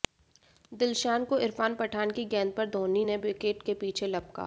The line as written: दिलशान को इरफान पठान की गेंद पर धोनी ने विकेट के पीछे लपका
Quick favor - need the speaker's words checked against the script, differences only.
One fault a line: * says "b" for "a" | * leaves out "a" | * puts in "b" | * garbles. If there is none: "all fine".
all fine